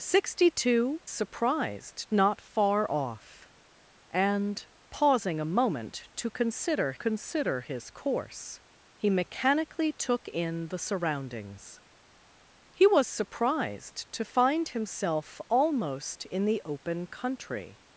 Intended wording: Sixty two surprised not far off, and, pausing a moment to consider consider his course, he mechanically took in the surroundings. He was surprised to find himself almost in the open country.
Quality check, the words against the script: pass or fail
pass